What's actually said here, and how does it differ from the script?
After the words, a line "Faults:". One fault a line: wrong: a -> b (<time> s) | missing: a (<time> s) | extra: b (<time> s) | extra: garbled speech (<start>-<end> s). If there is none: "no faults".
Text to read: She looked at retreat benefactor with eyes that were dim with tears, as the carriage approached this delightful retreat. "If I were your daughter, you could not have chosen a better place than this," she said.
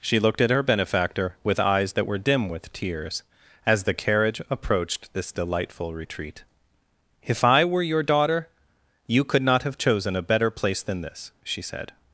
She looked at her benefactor with eyes that were dim with tears, as the carriage approached this delightful retreat. "If I were your daughter, you could not have chosen a better place than this," she said.
Faults:
wrong: retreat -> her (0.5 s)